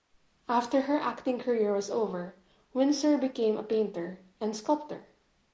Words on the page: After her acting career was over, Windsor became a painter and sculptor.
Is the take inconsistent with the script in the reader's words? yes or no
no